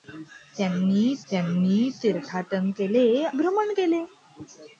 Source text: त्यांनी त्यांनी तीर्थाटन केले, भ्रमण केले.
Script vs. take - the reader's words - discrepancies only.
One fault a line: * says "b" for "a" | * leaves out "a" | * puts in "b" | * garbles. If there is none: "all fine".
all fine